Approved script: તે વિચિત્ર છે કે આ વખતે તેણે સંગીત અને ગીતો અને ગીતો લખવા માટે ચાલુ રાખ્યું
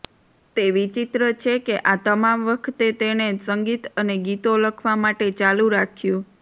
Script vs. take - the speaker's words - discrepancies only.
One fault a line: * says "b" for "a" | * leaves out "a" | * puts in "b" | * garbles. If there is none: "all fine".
* puts in "તમામ"
* leaves out "અને ગીતો"